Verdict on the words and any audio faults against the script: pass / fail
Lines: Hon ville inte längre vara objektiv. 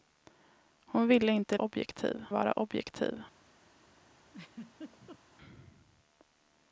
fail